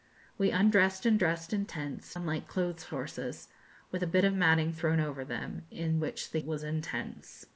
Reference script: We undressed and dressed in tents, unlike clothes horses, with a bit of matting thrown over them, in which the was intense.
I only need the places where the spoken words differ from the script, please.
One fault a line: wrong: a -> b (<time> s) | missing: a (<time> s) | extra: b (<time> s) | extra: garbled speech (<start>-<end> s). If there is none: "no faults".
no faults